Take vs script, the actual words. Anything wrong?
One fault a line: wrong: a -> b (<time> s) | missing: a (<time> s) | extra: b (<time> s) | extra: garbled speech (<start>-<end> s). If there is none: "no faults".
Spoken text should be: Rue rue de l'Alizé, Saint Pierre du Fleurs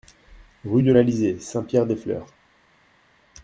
missing: rue (0.8 s)
wrong: du -> des (1.8 s)